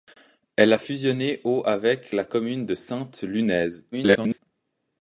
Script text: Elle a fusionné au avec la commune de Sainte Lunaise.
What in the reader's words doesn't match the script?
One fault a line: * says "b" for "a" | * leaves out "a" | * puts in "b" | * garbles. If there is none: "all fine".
* garbles